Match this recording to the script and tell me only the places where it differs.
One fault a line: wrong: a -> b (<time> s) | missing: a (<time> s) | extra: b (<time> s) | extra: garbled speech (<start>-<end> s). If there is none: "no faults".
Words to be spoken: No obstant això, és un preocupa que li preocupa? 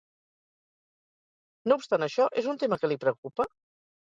wrong: preocupa -> tema (2.6 s)